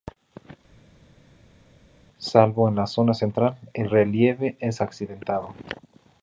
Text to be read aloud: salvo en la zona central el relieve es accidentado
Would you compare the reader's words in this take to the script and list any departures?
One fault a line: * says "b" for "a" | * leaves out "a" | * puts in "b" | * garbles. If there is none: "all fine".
all fine